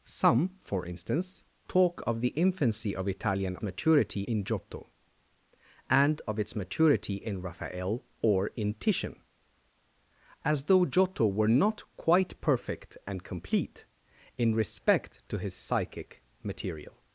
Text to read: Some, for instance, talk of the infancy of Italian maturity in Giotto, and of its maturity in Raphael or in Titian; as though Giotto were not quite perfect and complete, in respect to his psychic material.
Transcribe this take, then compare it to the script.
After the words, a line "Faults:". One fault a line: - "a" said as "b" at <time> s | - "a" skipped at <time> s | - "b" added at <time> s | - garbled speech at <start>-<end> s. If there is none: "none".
Some, for instance, talk of the infancy of Italian maturity in Giotto, and of its maturity in Raphael or in Titian; as though Giotto were not quite perfect and complete, in respect to his psychic material.
Faults:
none